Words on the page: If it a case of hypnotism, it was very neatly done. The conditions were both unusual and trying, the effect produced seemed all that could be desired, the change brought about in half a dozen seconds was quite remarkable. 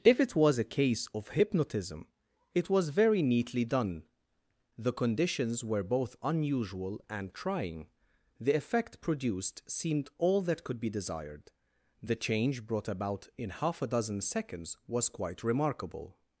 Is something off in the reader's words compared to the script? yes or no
yes